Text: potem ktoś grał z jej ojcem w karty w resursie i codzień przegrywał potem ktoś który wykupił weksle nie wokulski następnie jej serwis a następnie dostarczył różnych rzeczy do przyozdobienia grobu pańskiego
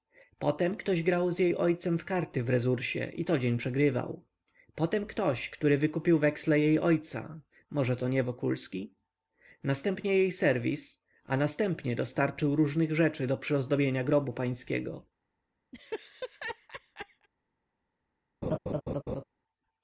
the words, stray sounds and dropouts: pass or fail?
fail